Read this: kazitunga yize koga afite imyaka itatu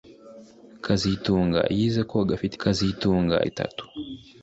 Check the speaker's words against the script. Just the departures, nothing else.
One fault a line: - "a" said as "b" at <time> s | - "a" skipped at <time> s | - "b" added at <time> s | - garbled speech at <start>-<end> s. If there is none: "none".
- "imyaka" said as "kazitunga" at 2.6 s